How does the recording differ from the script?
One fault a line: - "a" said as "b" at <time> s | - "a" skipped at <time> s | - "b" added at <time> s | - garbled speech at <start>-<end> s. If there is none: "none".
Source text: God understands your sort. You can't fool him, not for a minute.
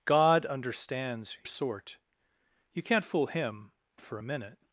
- "your" skipped at 1.4 s
- "not" skipped at 3.7 s